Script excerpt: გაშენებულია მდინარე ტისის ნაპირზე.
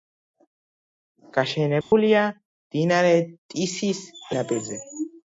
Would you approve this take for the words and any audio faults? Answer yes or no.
no